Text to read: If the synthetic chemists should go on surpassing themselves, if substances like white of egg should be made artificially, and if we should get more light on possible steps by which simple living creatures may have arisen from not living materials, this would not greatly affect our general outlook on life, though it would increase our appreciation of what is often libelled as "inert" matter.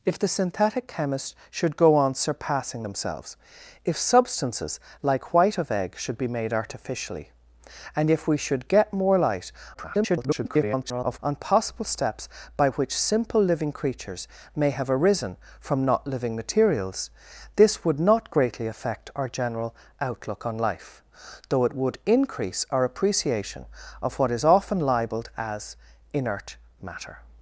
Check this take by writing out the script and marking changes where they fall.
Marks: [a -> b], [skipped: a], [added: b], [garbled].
If the synthetic chemists should go on surpassing themselves, if substances like white of egg should be made artificially, and if we should get more light [garbled] on possible steps by which simple living creatures may have arisen from not living materials, this would not greatly affect our general outlook on life, though it would increase our appreciation of what is often libelled as "inert" matter.